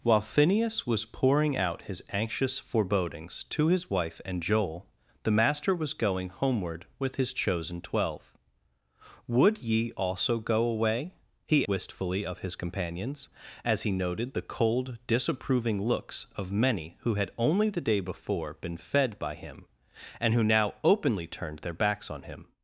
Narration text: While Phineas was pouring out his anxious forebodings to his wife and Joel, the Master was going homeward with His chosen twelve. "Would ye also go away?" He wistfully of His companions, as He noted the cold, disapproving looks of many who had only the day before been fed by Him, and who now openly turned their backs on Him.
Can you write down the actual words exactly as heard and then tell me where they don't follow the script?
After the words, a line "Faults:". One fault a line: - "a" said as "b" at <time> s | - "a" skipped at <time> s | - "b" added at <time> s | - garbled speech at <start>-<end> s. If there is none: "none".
While Phineas was pouring out his anxious forebodings to his wife and Joel, the Master was going homeward with His chosen twelve. "Would ye also go away?" He wistfully of His companions, as He noted the cold, disapproving looks of many who had only the day before been fed by Him, and who now openly turned their backs on Him.
Faults:
none